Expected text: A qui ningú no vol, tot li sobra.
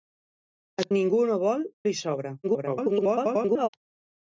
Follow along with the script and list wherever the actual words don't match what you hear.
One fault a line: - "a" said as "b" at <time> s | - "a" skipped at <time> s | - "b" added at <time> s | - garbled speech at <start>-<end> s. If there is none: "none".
- "qui" skipped at 0.8 s
- "tot" skipped at 1.6 s
- garbled speech at 2.4-3.7 s